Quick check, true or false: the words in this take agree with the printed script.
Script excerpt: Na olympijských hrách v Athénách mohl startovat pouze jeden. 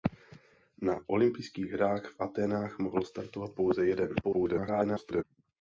false